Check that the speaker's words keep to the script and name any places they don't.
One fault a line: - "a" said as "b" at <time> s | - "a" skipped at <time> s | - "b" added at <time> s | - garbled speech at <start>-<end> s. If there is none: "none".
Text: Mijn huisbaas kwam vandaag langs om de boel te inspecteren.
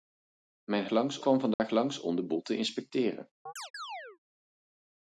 - "huisbaas" said as "langs" at 0.9 s